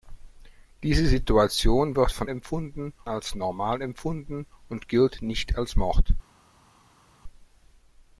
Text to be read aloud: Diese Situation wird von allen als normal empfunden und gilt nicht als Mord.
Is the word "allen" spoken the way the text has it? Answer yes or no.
no